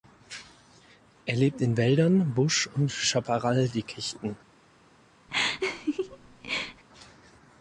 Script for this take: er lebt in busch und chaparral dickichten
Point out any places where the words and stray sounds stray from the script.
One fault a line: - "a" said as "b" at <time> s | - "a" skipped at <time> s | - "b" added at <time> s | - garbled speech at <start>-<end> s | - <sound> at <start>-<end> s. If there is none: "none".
- "wäldern" added at 1.8 s
- laugh at 5.3-6.8 s